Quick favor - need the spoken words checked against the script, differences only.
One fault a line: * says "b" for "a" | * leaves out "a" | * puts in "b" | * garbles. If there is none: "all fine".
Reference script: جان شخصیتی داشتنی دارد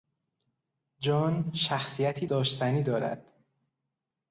all fine